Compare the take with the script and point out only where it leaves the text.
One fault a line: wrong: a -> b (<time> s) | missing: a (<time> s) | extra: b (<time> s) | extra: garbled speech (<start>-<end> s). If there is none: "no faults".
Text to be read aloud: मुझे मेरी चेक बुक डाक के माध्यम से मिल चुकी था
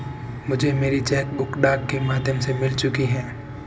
wrong: था -> है (3.1 s)